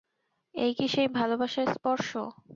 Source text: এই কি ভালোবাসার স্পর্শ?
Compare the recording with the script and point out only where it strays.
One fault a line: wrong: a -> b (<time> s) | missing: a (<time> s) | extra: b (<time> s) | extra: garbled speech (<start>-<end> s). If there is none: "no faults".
extra: সেই (0.9 s)